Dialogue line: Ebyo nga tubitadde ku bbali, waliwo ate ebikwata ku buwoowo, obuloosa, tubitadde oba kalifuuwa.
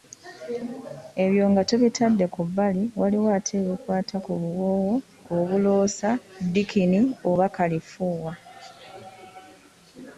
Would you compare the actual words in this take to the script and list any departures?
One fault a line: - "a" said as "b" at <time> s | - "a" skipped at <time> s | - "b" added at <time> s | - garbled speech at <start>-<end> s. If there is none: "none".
- "tubitadde" said as "ddikini" at 6.5 s